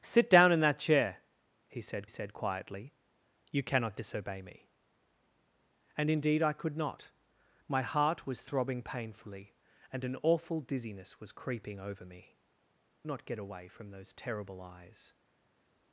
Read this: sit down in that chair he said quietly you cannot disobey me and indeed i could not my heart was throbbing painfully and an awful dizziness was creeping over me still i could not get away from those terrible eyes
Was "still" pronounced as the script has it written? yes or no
no